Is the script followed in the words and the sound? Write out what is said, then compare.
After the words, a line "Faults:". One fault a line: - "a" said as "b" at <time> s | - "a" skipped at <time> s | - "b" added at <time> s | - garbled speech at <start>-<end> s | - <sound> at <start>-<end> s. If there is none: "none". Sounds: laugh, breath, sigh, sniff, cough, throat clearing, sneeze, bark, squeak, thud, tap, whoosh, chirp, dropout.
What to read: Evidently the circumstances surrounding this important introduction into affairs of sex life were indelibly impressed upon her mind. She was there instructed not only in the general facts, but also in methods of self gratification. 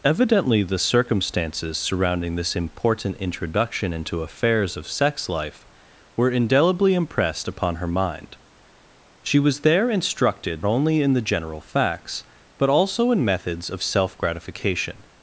Evidently the circumstances surrounding this important introduction into affairs of sex life were indelibly impressed upon her mind. She was there instructed only in the general facts, but also in methods of self gratification.
Faults:
- "not" skipped at 10.7 s